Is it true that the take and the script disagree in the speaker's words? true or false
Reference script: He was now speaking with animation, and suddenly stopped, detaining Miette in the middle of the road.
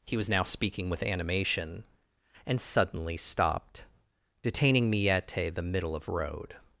true